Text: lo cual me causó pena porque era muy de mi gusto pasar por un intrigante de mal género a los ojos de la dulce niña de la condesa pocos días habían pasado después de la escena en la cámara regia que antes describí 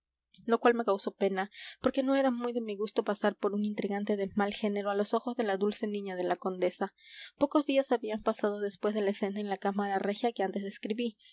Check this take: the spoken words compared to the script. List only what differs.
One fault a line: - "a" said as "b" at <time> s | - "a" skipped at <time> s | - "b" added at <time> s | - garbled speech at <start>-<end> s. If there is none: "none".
- "no" added at 2.0 s